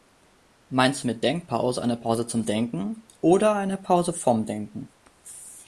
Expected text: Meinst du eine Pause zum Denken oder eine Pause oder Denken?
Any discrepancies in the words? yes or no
yes